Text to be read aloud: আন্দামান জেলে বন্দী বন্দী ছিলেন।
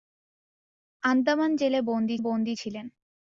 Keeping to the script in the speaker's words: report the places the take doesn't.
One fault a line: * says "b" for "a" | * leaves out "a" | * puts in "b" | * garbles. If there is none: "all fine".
all fine